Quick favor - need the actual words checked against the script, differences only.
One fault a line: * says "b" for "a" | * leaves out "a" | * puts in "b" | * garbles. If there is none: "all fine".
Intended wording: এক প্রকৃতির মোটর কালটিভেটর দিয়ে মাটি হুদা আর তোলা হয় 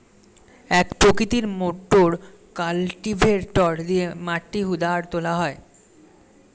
all fine